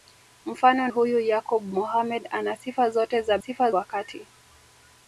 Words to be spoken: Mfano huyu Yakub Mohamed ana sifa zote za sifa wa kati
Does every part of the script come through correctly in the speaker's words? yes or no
yes